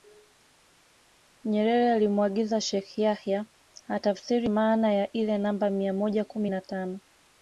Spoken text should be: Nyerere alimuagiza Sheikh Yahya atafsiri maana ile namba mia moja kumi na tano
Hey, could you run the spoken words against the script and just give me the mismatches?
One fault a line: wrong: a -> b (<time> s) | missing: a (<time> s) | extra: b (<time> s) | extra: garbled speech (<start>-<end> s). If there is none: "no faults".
extra: ya (4.9 s)